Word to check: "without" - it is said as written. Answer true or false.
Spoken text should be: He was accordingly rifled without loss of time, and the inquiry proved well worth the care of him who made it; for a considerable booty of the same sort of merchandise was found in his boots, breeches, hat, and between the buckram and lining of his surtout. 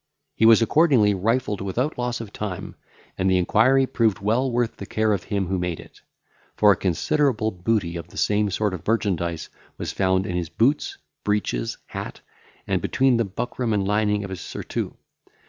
true